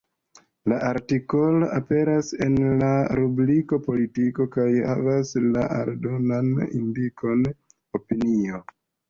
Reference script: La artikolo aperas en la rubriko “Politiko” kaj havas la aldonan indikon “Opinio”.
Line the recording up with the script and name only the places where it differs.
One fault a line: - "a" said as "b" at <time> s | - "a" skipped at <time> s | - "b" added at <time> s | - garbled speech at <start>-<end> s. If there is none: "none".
none